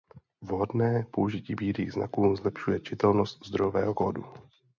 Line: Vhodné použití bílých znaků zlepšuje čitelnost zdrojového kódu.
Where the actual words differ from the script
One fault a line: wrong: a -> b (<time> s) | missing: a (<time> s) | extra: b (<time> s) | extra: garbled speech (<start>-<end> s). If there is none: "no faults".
no faults